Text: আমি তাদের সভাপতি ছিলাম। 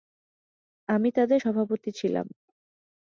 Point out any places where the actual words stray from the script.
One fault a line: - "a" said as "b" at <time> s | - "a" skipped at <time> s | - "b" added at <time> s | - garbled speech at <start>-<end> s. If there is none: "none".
none